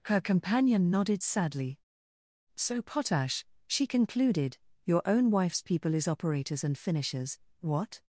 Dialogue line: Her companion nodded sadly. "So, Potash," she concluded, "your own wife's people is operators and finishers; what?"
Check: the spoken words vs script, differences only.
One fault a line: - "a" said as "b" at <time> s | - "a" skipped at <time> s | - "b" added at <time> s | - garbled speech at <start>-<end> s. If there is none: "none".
none